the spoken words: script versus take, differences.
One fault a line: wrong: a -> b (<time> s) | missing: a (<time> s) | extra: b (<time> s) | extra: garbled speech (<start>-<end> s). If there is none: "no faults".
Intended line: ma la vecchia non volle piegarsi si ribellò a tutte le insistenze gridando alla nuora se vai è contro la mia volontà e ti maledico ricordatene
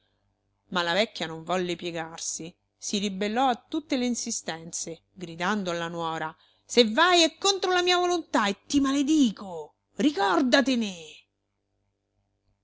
no faults